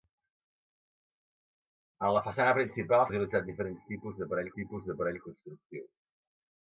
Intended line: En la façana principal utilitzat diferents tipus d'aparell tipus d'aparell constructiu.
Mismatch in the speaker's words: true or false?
false